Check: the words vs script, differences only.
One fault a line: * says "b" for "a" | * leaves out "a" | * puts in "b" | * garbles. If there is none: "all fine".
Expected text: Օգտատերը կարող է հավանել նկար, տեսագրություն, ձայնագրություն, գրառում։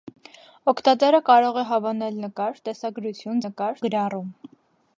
* says "նկար" for "ձայնագրություն"